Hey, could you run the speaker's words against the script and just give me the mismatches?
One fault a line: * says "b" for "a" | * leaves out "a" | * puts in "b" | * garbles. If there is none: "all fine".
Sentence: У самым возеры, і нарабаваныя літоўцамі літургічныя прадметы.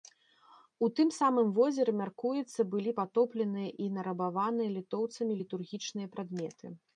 * puts in "тым"
* puts in "мяркуецца былі патопленыя"